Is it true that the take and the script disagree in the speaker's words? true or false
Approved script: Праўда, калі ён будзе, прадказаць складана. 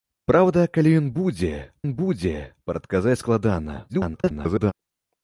true